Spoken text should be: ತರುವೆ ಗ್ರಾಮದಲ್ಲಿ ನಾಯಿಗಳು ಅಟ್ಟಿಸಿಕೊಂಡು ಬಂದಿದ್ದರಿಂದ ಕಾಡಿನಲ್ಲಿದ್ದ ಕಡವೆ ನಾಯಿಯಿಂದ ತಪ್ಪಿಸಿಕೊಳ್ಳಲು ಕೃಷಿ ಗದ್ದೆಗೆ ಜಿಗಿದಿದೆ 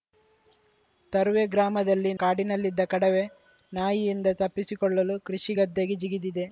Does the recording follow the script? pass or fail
fail